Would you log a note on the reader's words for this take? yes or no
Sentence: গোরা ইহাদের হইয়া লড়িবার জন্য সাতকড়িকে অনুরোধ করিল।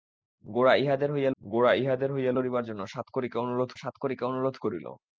yes